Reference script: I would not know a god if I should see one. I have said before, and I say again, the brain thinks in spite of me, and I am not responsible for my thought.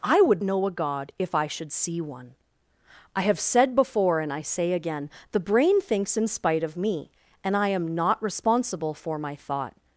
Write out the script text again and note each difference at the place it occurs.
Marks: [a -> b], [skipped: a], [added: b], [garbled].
I would [skipped: not] know a god if I should see one. I have said before, and I say again, the brain thinks in spite of me, and I am not responsible for my thought.